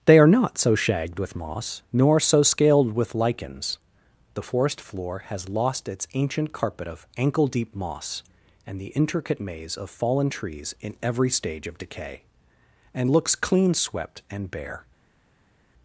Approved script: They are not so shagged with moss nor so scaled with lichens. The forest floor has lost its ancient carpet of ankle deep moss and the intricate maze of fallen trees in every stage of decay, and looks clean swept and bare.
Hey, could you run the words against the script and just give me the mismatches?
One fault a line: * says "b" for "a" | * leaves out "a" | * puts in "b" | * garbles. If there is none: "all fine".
all fine